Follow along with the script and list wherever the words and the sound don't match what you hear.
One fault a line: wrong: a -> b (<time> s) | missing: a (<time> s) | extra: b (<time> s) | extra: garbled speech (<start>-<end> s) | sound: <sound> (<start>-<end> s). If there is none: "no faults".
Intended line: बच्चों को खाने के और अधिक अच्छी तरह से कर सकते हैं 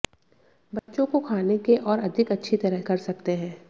sound: dropout (0.8-0.9 s)
missing: से (2.8 s)